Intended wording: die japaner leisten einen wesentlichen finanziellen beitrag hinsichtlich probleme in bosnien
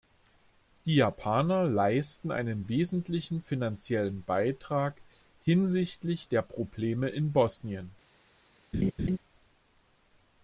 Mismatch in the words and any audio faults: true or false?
true